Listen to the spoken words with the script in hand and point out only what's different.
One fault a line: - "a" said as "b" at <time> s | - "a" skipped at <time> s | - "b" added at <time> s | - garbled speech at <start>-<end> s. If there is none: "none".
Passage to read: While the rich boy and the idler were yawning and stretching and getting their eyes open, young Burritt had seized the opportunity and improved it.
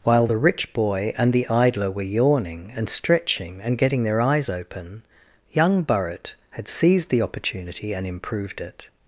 none